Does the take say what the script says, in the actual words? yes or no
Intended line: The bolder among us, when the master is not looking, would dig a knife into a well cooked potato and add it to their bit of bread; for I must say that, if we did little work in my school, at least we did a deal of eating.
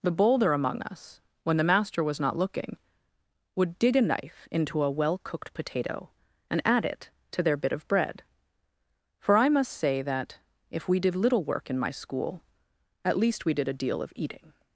no